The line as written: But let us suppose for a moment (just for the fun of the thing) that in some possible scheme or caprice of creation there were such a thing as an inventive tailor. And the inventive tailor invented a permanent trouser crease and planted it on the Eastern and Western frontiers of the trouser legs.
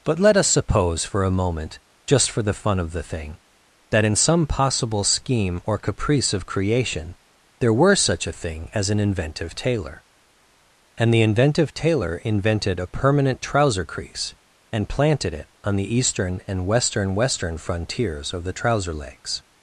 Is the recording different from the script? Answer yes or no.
yes